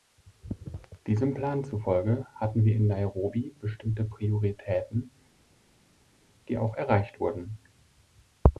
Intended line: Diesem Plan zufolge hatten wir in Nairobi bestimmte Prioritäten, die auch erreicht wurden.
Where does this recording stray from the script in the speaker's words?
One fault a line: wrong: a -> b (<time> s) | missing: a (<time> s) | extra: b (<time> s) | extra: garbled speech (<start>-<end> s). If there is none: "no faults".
no faults